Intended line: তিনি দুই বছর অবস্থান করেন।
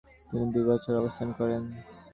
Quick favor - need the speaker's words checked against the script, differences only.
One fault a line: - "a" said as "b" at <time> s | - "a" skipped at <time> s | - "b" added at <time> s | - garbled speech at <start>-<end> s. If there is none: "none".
none